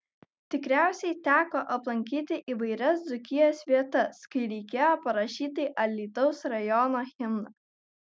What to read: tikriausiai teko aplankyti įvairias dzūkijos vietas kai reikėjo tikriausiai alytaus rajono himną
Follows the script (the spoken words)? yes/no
no